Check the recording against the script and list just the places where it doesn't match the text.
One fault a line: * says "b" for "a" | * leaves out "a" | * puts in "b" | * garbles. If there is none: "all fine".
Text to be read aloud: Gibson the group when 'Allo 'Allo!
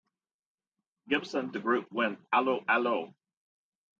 all fine